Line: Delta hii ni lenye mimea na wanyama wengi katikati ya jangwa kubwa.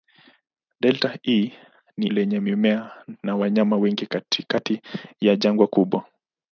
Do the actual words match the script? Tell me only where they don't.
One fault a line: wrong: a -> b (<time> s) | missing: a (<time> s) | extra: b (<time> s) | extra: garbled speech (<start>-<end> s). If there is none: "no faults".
no faults